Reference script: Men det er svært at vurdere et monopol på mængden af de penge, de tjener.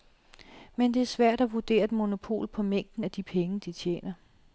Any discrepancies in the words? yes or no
no